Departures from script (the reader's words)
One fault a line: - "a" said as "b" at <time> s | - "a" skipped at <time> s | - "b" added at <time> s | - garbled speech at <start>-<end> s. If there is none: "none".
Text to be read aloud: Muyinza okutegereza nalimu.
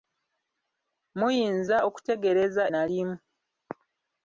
none